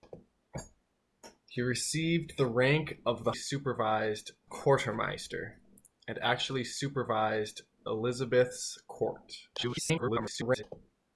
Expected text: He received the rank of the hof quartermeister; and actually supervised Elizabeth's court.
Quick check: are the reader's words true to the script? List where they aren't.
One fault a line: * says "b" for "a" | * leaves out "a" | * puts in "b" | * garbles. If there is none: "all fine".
* says "supervised" for "hof"
* garbles